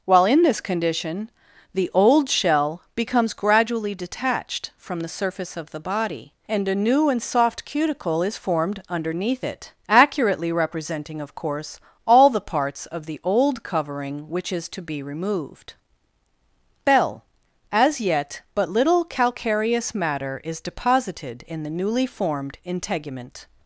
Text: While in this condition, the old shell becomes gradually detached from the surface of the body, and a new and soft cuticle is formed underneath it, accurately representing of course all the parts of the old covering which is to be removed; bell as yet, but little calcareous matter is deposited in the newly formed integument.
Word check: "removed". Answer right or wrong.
right